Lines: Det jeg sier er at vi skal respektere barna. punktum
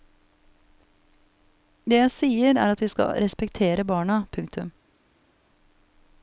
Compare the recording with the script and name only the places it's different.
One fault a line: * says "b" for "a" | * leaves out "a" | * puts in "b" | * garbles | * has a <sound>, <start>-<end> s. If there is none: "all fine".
all fine